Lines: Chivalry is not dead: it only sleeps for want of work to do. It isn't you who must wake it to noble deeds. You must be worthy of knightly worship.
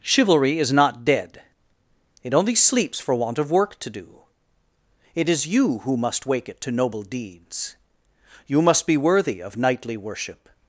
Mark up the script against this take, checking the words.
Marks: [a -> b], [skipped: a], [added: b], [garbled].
Chivalry is not dead: it only sleeps for want of work to do. It [isn't -> is] you who must wake it to noble deeds. You must be worthy of knightly worship.